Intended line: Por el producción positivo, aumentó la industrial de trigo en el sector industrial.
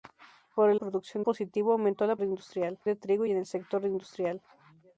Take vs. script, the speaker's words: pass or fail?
pass